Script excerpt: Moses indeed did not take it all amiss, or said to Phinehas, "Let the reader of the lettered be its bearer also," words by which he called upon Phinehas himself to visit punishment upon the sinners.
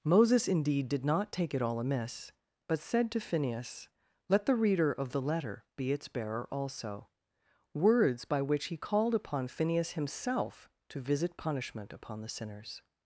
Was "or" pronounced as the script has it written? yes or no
no